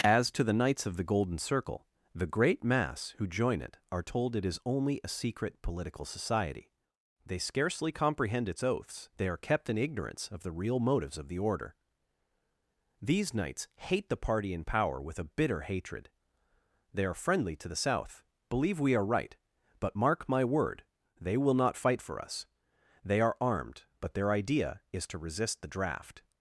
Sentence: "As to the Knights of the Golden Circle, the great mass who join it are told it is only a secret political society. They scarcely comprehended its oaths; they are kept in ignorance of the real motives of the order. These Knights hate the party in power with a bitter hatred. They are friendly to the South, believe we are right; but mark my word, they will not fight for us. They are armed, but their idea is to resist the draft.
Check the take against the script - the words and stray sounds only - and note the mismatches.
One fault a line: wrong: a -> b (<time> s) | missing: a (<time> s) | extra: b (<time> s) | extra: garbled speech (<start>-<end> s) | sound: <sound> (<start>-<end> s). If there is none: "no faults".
wrong: comprehended -> comprehend (7.9 s)